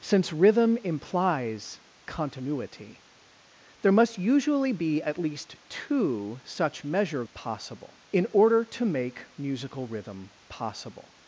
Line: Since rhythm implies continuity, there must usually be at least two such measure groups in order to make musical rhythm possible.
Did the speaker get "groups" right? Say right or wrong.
wrong